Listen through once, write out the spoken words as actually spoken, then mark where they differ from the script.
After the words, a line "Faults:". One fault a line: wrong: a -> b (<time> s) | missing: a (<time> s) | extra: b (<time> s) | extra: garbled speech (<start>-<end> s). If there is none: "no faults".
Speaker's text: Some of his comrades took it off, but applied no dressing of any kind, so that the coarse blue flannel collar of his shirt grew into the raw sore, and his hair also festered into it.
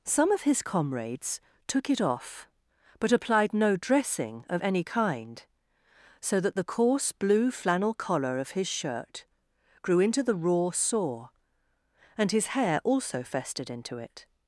Some of his comrades took it off, but applied no dressing of any kind, so that the coarse blue flannel collar of his shirt grew into the raw sore, and his hair also festered into it.
Faults:
no faults